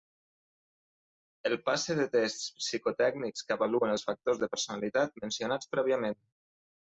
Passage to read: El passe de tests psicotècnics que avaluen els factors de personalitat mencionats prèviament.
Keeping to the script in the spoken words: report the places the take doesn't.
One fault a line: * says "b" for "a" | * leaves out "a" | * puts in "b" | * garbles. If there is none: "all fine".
all fine